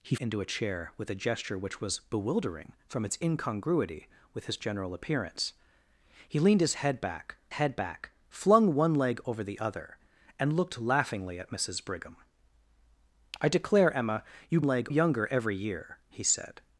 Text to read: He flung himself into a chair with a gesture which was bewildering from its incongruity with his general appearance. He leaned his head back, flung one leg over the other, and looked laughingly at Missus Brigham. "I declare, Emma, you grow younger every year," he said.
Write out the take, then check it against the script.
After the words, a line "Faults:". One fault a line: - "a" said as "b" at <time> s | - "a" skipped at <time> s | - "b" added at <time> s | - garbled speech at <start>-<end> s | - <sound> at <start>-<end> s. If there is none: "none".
He into a chair with a gesture which was bewildering from its incongruity with his general appearance. He leaned his head back head back, flung one leg over the other, and looked laughingly at Missus Brigham. "I declare, Emma, you leg younger every year," he said.
Faults:
- "flung himself" skipped at 0.1 s
- "head back" added at 7.5 s
- "grow" said as "leg" at 14.6 s